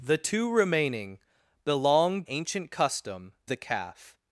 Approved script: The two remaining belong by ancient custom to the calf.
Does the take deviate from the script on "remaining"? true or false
false